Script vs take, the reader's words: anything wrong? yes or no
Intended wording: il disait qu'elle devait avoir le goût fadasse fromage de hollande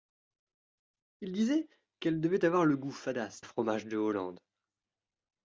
no